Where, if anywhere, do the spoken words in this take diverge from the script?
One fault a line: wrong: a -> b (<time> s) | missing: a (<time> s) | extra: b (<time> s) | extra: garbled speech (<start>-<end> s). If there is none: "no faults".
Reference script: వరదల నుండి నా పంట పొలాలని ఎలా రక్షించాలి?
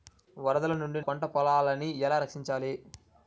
missing: నా (1.0 s)